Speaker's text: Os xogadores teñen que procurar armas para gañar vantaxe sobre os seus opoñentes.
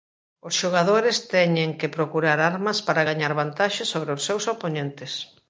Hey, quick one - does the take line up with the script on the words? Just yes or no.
yes